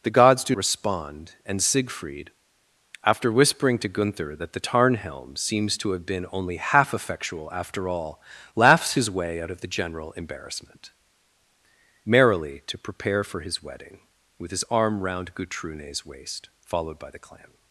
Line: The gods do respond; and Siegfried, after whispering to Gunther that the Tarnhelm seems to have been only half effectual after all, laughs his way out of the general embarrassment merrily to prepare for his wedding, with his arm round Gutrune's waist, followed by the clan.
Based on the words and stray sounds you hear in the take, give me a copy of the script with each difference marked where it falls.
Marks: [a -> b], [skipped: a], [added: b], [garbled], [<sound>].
The gods do respond; and Siegfried, after whispering to Gunther that the Tarnhelm seems to have been only half effectual after all, laughs his way out of the general embarrassment merrily to prepare for his wedding, with his arm round Gutrune's waist, followed by the clan.